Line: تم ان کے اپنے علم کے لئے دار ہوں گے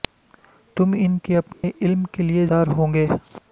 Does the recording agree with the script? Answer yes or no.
yes